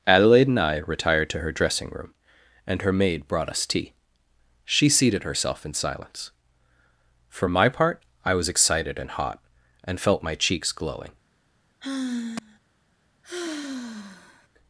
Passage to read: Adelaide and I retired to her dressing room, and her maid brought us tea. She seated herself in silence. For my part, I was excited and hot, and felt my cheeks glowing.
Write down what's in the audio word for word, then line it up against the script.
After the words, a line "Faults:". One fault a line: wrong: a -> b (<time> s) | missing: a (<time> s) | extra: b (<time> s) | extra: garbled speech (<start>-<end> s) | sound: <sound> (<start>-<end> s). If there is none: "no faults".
Adelaide and I retired to her dressing room, and her maid brought us tea. She seated herself in silence. For my part, I was excited and hot, and felt my cheeks glowing.
Faults:
sound: sigh (11.8-12.6 s)
sound: sigh (13.2-14.5 s)